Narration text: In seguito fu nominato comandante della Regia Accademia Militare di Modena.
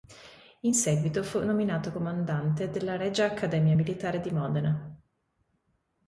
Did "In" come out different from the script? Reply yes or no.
no